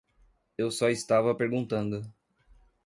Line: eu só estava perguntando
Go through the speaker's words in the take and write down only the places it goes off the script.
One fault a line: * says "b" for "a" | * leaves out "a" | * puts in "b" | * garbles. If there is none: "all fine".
all fine